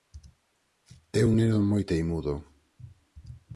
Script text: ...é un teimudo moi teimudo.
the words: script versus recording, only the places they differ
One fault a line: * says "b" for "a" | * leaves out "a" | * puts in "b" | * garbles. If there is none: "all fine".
* says "neno" for "teimudo"